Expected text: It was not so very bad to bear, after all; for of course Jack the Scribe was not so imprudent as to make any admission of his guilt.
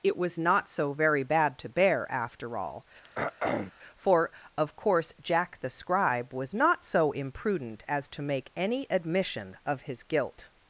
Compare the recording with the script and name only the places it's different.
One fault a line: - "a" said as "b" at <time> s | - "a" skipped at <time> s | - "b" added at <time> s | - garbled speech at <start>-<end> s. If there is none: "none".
none